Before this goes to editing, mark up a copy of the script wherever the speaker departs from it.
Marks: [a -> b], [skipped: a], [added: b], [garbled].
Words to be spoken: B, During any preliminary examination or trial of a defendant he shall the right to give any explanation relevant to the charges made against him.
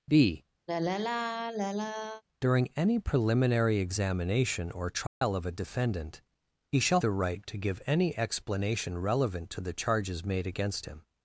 B, During any preliminary examination or trial of a defendant he shall the right to give any explanation relevant to the charges made against him.